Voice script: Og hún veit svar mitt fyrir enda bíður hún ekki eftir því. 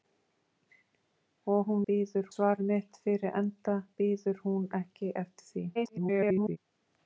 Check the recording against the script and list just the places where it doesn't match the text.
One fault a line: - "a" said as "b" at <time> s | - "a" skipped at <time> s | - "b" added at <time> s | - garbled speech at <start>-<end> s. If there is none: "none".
- "veit" said as "bíður" at 1.9 s
- garbled speech at 5.7-6.6 s